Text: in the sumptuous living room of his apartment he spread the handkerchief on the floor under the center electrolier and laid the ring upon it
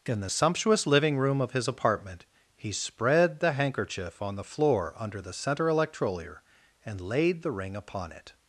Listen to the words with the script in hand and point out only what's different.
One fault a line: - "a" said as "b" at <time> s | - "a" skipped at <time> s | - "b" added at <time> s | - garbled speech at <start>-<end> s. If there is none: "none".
none